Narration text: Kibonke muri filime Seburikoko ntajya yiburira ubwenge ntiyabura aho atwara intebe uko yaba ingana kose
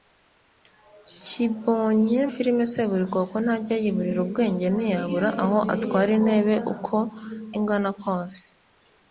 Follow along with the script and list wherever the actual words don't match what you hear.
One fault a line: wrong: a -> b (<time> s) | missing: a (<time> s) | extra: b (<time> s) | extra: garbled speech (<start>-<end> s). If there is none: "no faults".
missing: muri (2.2 s)
missing: yaba (7.0 s)